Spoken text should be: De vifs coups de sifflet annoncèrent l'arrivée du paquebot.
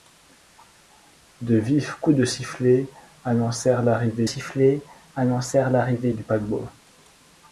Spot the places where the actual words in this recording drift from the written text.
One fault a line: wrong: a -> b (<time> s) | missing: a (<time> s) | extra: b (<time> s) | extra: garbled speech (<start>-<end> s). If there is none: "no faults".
extra: sifflet annoncèrent l'arrivée (4.2 s)